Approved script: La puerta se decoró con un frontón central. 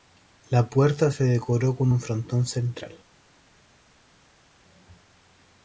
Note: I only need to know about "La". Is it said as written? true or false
true